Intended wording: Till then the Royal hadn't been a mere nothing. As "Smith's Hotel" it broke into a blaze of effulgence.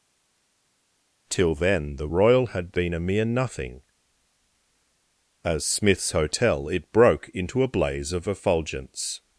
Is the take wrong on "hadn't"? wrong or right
wrong